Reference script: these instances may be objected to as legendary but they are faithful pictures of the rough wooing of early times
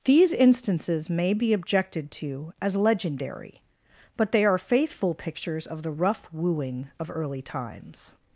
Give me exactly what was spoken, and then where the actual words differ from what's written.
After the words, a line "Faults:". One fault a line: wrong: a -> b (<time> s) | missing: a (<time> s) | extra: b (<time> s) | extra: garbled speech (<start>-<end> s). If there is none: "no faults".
these instances may be objected to as legendary but they are faithful pictures of the rough wooing of early times
Faults:
no faults